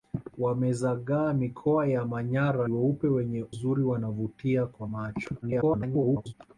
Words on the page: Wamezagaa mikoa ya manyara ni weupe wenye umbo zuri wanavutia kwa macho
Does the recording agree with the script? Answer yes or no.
no